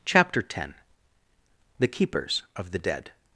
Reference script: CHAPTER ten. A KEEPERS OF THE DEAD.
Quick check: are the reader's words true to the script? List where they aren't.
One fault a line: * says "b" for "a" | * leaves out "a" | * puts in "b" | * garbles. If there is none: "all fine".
* says "THE" for "A"